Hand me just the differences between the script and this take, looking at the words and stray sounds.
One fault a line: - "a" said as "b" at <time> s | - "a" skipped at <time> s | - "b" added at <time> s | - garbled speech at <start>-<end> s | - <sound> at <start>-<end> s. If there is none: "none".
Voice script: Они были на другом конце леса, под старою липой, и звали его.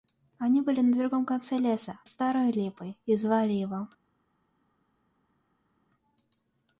- "под" skipped at 2.0 s